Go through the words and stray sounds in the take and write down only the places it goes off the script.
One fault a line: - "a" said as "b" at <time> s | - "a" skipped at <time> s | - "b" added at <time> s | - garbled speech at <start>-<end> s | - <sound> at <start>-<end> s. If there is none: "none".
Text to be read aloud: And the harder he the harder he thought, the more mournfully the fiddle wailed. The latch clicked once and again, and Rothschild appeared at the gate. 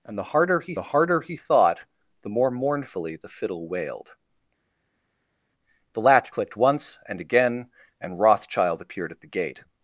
none